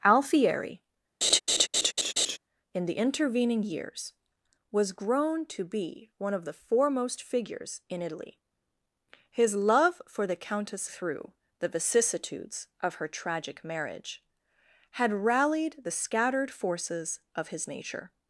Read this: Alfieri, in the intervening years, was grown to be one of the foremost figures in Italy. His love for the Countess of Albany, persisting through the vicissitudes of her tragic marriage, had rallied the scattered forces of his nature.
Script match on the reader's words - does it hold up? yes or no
no